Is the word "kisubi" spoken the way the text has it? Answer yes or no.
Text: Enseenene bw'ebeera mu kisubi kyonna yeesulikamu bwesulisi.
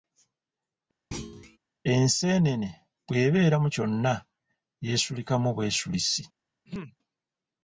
no